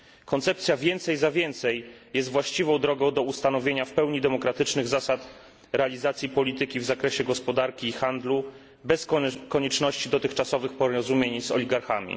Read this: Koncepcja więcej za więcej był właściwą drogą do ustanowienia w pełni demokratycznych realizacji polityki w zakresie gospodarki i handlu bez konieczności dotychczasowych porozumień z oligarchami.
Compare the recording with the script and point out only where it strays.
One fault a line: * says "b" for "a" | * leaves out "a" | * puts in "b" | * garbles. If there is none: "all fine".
* says "jest" for "był"
* puts in "zasad"